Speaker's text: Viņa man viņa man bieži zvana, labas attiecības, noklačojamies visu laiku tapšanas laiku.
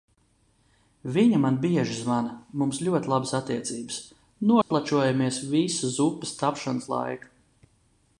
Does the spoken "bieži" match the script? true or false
false